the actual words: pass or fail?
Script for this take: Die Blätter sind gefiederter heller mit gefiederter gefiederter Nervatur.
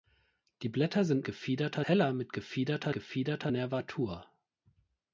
pass